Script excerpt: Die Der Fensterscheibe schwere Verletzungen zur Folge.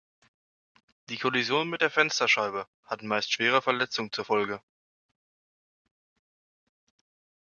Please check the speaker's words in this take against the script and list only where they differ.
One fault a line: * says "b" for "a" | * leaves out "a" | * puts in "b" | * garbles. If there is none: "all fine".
* puts in "Kollision mit"
* puts in "hat meist"